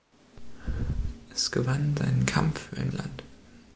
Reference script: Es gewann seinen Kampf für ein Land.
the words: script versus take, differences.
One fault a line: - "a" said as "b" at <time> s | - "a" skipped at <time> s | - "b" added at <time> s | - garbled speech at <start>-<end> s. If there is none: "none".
none